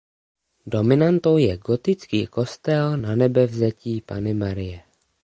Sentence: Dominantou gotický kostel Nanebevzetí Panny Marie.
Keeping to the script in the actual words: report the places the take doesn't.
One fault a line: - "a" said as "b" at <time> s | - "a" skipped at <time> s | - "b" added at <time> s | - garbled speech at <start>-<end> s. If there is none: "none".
- "je" added at 1.4 s